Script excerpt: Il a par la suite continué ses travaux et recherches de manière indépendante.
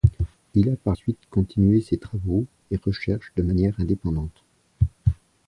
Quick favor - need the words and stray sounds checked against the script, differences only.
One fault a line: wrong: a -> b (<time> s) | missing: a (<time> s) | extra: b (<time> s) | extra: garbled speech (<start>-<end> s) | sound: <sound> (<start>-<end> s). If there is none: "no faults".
missing: la (0.9 s)